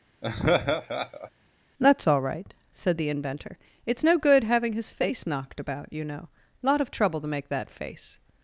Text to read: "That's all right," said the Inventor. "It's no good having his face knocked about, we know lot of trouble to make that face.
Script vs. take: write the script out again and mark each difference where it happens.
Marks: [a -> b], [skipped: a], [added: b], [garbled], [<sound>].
[laugh] "That's all right," said the Inventor. "It's no good having his face knocked about, [we -> you] know lot of trouble to make that face.